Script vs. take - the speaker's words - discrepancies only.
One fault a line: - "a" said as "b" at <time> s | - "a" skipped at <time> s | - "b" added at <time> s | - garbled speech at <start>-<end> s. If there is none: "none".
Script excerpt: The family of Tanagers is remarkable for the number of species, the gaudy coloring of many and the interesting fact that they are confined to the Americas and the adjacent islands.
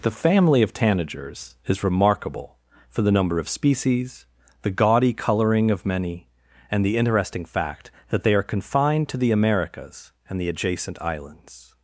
none